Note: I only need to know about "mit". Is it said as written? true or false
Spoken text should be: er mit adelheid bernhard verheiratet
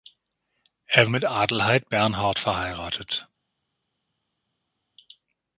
true